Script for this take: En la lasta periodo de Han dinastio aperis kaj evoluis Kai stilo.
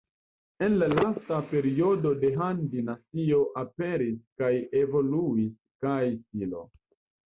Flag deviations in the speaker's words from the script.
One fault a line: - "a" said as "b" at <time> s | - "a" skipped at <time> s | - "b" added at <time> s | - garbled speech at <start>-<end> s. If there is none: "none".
none